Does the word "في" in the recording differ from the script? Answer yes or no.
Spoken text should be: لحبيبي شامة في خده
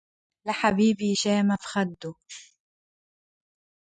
no